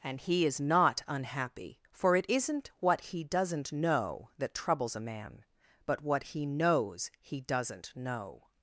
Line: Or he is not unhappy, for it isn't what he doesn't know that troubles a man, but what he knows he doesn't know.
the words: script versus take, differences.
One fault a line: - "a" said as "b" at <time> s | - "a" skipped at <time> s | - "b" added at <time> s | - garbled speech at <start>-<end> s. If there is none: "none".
- "Or" said as "And" at 0.0 s